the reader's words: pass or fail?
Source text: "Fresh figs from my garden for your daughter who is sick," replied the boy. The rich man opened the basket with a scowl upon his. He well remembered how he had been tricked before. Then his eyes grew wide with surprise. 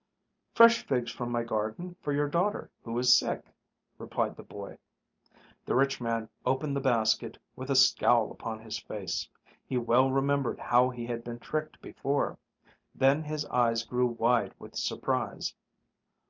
fail